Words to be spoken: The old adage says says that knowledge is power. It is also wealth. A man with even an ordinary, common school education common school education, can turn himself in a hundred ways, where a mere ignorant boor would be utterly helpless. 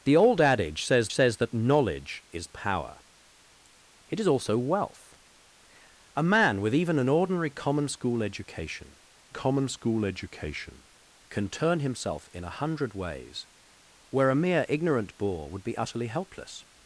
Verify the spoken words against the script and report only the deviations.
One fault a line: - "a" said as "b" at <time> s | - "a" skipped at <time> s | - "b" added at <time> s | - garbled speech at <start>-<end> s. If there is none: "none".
none